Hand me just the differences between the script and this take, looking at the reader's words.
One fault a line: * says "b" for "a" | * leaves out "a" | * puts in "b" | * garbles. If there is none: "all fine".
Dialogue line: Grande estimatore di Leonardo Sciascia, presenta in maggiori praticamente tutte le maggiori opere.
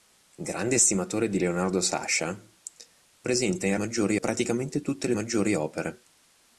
all fine